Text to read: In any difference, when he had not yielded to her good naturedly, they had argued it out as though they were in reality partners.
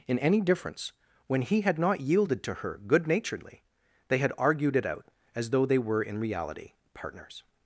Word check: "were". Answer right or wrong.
right